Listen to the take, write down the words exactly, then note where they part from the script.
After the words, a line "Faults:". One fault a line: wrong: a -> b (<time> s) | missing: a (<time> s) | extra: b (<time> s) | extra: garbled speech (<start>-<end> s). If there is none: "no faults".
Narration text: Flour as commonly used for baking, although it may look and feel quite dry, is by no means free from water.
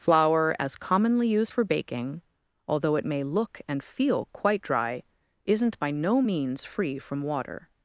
Flour as commonly used for baking, although it may look and feel quite dry, isn't by no means free from water.
Faults:
wrong: is -> isn't (5.4 s)